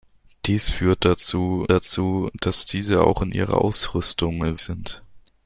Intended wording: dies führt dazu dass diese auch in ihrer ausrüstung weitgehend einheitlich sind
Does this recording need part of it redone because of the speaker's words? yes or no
yes